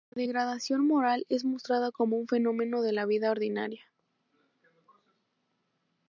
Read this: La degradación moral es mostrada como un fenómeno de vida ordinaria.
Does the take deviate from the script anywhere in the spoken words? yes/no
yes